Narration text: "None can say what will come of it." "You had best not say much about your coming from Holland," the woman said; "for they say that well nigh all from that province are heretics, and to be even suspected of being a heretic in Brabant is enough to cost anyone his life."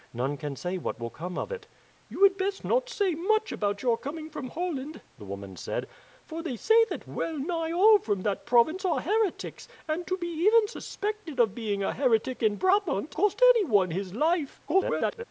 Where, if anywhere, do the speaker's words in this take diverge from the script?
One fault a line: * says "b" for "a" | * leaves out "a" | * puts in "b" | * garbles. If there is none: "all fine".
* leaves out "is enough to"
* garbles